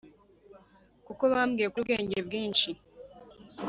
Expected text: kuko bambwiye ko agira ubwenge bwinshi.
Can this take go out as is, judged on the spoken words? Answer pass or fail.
fail